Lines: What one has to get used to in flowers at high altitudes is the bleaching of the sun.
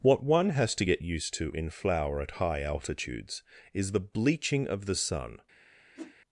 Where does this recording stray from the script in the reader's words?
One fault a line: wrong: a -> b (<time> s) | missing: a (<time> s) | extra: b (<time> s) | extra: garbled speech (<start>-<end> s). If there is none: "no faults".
wrong: flowers -> flower (1.7 s)